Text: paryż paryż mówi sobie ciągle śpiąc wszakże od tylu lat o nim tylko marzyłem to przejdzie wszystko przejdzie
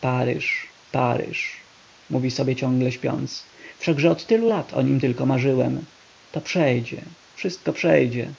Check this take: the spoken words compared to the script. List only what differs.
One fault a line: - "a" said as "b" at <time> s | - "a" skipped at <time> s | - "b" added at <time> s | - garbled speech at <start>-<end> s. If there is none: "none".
none